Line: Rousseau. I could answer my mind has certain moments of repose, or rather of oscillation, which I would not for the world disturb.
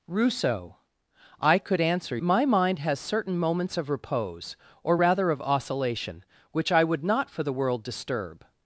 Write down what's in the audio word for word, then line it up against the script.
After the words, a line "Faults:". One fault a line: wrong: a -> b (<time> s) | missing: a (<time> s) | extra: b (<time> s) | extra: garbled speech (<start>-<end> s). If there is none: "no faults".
Rousseau. I could answer my mind has certain moments of repose, or rather of oscillation, which I would not for the world disturb.
Faults:
no faults